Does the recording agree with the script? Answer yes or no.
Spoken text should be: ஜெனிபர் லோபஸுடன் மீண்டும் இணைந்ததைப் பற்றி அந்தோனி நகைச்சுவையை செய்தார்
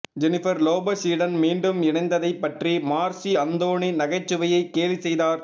no